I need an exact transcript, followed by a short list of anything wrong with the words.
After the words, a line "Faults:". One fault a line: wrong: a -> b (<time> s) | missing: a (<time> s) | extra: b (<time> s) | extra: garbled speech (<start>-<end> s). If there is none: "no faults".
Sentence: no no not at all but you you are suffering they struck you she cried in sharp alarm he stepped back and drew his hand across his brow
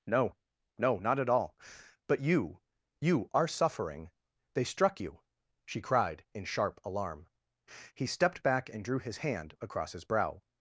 no no not at all but you you are suffering they struck you she cried in sharp alarm he stepped back and drew his hand across his brow
Faults:
no faults